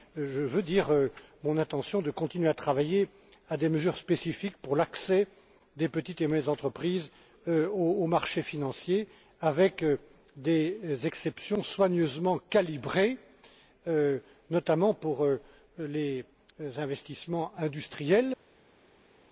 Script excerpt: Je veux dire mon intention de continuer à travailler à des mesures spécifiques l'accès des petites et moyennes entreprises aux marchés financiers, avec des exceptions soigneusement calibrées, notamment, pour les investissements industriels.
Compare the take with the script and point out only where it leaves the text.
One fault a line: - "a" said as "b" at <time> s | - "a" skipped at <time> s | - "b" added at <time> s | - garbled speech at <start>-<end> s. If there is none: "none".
- "pour" added at 4.6 s